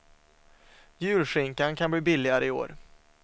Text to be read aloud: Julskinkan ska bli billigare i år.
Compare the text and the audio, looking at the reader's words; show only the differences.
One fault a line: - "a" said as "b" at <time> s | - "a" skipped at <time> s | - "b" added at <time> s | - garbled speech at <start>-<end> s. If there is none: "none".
- "ska" said as "kan" at 1.8 s